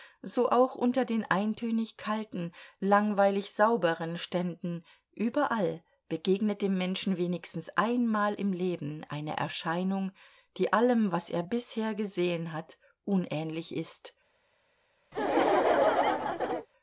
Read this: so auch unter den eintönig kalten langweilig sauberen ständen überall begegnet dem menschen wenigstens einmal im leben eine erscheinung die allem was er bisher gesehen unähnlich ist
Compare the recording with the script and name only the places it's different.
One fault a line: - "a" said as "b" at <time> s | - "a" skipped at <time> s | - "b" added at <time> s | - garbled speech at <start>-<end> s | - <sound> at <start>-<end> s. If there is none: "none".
- "hat" added at 12.5 s
- laugh at 15.1-16.7 s